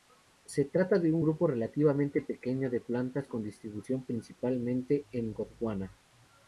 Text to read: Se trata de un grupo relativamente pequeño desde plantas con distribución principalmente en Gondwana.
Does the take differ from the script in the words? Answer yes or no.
yes